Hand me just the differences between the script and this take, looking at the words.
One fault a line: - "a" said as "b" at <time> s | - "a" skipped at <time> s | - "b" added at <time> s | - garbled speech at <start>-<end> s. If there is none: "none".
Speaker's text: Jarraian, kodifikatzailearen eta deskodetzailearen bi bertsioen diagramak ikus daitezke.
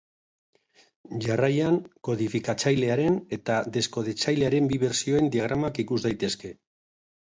none